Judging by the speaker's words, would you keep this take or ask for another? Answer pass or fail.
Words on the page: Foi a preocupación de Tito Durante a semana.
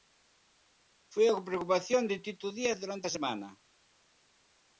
fail